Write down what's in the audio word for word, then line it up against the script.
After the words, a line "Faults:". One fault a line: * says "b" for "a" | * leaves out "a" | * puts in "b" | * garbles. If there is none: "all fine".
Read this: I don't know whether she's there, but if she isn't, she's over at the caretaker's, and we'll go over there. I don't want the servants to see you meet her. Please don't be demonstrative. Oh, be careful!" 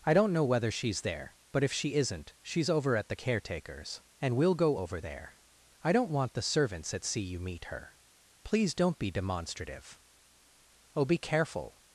I don't know whether she's there, but if she isn't, she's over at the caretaker's, and we'll go over there. I don't want the servants at see you meet her. Please don't be demonstrative. Oh, be careful!"
Faults:
* says "at" for "to"